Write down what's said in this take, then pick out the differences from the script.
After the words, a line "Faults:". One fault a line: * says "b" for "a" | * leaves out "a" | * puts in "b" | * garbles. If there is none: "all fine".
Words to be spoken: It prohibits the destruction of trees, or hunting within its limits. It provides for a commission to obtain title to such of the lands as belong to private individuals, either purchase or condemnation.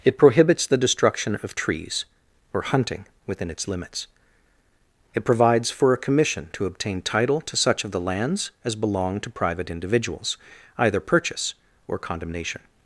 It prohibits the destruction of trees, or hunting within its limits. It provides for a commission to obtain title to such of the lands as belong to private individuals, either purchase or condemnation.
Faults:
all fine